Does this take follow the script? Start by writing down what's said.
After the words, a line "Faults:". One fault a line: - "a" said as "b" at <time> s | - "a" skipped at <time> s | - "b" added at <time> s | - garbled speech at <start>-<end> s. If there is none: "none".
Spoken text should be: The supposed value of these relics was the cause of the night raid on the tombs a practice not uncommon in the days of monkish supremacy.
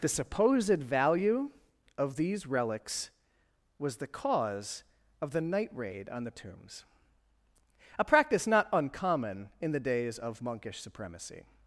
The supposed value of these relics was the cause of the night raid on the tombs a practice not uncommon in the days of monkish supremacy.
Faults:
none